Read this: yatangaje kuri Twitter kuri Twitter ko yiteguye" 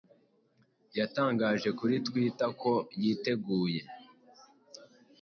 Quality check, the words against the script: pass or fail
fail